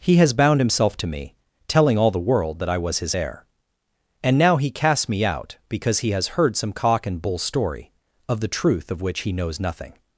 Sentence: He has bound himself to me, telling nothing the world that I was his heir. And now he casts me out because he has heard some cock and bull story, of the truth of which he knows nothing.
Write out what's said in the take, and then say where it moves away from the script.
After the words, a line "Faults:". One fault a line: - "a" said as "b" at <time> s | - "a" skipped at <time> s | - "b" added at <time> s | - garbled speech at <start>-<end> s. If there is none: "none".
He has bound himself to me, telling all the world that I was his heir. And now he casts me out because he has heard some cock and bull story, of the truth of which he knows nothing.
Faults:
- "nothing" said as "all" at 1.9 s